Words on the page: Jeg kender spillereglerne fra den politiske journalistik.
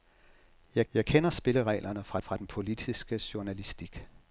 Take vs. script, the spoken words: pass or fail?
fail